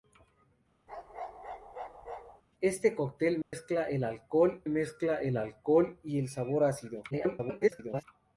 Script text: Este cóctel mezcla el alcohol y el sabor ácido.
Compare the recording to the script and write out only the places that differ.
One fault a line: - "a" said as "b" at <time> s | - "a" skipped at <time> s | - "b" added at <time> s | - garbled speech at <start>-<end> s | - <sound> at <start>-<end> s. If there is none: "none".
- bark at 0.9-2.4 s
- dropout at 3.4-3.5 s
- "mezcla el alcohol" added at 4.7 s
- garbled speech at 7.1-8.0 s